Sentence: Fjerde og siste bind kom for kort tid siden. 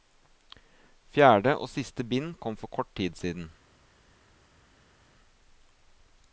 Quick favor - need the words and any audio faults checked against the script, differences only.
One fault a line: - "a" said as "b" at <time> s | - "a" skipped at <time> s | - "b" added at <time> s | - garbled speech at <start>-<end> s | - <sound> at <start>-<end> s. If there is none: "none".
none